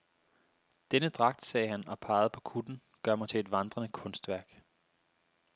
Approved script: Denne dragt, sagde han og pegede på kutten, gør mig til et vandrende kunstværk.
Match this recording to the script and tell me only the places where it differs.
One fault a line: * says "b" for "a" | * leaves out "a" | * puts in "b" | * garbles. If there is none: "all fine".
all fine